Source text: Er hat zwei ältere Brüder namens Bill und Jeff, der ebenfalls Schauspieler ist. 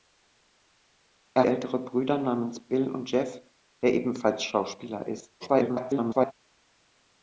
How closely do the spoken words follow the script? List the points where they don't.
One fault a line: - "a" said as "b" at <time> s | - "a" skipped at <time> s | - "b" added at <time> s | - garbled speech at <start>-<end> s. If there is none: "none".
- "hat zwei" skipped at 1.4 s
- garbled speech at 5.4-6.3 s